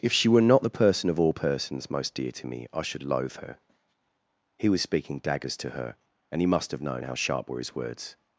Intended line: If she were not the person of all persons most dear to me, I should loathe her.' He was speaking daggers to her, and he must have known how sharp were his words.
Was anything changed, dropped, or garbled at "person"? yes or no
no